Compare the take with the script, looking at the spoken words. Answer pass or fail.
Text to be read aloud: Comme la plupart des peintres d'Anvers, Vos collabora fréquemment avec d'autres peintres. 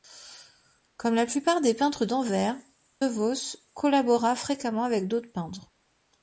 pass